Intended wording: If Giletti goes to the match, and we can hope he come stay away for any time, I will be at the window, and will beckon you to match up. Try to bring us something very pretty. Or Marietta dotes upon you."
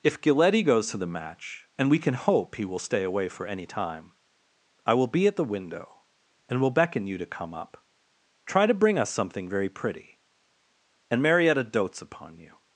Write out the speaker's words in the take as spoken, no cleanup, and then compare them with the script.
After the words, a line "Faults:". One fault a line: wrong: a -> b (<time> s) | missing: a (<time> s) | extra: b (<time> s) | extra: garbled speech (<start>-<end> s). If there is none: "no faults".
If Giletti goes to the match, and we can hope he will stay away for any time, I will be at the window, and will beckon you to come up. Try to bring us something very pretty. And Marietta dotes upon you."
Faults:
wrong: come -> will (2.6 s)
wrong: match -> come (7.2 s)
wrong: Or -> And (11.1 s)